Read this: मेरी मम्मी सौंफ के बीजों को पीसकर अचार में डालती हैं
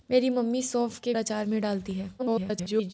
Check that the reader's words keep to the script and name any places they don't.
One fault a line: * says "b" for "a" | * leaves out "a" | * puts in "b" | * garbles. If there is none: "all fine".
* leaves out "बीजों को पीसकर"
* garbles